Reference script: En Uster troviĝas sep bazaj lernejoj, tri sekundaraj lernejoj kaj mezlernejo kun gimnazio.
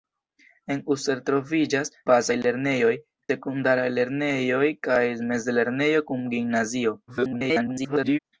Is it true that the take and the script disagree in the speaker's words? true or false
true